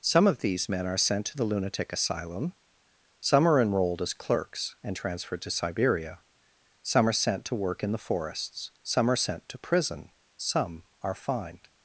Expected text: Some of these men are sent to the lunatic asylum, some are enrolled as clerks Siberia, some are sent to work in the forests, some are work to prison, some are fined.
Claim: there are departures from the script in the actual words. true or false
true